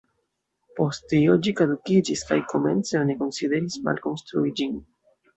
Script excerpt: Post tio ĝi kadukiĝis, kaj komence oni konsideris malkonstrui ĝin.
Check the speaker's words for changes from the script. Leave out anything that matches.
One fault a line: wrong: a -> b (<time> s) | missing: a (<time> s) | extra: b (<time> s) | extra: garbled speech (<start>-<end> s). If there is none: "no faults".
no faults